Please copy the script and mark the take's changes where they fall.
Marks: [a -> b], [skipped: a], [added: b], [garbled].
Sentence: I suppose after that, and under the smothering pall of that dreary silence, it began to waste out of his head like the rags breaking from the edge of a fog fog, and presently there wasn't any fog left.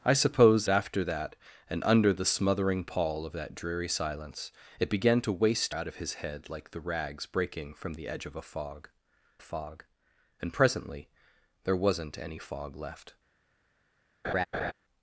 I suppose after that, and under the smothering pall of that dreary silence, it began to waste out of his head like the rags breaking from the edge of a fog fog, and presently there wasn't any fog left.